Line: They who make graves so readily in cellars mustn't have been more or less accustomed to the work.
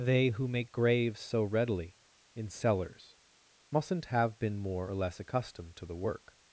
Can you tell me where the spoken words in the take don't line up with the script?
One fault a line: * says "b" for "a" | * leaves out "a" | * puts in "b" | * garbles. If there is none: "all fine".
all fine